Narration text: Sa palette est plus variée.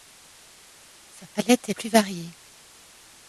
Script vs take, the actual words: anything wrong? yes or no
no